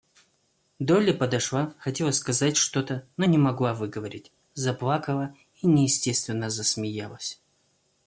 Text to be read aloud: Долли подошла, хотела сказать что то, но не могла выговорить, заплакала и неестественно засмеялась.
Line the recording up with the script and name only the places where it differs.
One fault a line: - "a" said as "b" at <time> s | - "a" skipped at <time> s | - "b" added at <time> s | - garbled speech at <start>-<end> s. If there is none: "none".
none